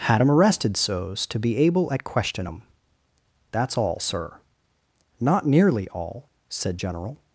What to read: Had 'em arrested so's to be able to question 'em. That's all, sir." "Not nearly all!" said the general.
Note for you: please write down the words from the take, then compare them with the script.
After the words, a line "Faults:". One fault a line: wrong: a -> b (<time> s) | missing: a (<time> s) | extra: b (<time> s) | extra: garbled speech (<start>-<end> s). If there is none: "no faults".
Had 'em arrested so's to be able at question 'em. That's all, sir." "Not nearly all!" said general.
Faults:
wrong: to -> at (1.9 s)
missing: the (6.8 s)